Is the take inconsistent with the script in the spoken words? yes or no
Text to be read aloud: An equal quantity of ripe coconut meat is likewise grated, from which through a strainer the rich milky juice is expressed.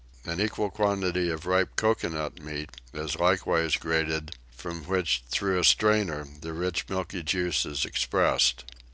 no